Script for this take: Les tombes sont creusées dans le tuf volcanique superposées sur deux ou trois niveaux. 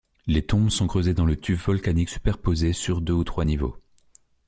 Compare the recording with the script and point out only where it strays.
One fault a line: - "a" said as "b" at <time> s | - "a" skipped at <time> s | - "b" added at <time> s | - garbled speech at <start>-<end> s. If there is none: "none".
none